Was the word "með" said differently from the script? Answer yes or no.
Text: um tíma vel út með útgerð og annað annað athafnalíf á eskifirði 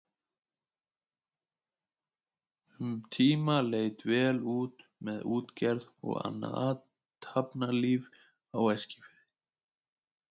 no